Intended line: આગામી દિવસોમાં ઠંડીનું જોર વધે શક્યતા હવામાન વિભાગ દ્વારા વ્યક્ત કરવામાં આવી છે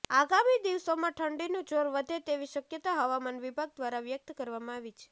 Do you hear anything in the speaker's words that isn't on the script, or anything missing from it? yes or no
yes